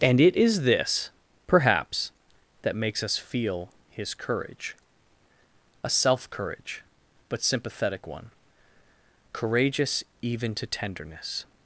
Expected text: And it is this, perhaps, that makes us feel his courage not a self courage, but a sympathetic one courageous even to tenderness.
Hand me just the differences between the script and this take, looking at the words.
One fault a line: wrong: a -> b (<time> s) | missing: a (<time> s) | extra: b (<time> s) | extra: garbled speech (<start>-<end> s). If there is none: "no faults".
missing: not (4.8 s)
missing: a (7.4 s)